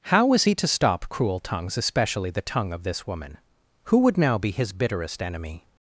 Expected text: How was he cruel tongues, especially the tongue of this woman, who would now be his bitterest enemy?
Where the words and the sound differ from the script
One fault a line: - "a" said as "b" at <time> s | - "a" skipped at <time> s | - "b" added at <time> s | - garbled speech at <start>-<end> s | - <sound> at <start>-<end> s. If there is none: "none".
- "to stop" added at 0.6 s